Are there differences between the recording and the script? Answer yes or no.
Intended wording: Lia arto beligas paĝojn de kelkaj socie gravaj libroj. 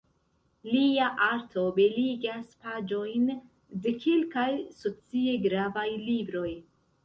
no